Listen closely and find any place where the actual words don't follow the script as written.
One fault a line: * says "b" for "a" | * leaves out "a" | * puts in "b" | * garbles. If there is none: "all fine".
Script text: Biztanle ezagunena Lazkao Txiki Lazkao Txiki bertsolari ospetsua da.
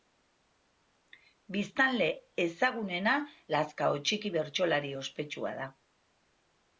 * leaves out "Lazkao Txiki"